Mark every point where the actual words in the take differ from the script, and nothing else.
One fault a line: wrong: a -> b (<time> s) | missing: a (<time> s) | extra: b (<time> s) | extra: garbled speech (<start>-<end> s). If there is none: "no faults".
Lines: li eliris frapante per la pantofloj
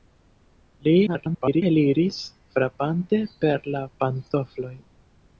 extra: garbled speech (1.1-1.6 s)